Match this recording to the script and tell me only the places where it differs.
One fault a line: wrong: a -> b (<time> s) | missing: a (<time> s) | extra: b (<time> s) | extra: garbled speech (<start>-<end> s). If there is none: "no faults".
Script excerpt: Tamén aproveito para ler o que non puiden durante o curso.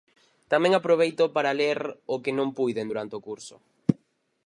no faults